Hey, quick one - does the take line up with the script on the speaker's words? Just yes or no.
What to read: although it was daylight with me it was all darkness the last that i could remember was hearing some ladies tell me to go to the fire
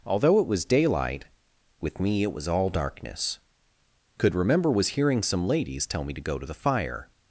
no